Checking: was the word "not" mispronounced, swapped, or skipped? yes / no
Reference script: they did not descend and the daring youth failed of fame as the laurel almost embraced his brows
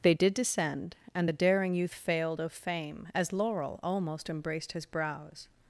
yes